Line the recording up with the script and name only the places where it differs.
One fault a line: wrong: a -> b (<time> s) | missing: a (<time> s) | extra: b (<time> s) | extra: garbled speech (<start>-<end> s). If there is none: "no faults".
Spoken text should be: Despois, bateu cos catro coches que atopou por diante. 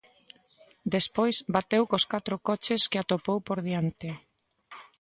no faults